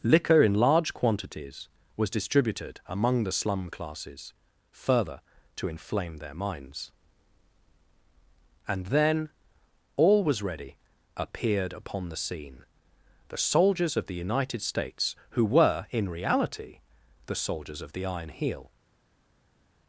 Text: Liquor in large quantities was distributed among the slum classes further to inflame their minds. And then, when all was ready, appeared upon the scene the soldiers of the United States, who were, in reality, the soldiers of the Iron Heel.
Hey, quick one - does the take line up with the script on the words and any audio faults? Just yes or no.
no